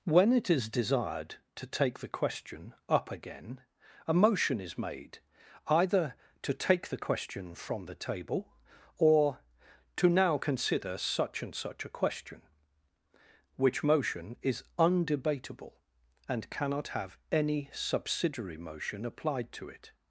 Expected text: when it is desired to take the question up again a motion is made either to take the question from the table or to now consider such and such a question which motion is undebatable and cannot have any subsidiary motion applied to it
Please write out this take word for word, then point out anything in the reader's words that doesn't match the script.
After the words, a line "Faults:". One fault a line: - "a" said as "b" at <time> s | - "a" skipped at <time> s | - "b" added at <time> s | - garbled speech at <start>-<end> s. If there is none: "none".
when it is desired to take the question up again a motion is made either to take the question from the table or to now consider such and such a question which motion is undebatable and cannot have any subsidiary motion applied to it
Faults:
none